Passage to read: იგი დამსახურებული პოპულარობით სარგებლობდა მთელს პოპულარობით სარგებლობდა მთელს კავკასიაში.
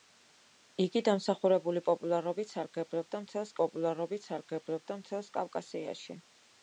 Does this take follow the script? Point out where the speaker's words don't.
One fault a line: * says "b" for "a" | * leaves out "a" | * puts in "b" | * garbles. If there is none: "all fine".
all fine